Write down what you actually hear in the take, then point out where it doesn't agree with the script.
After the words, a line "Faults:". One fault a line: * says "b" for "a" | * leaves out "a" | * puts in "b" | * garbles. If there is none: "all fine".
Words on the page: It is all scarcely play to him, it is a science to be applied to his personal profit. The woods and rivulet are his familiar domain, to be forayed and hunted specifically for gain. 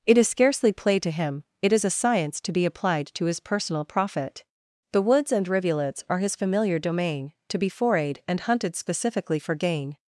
It is scarcely play to him, it is a science to be applied to his personal profit. The woods and rivulets are his familiar domain, to be forayed and hunted specifically for gain.
Faults:
* leaves out "all"
* says "rivulets" for "rivulet"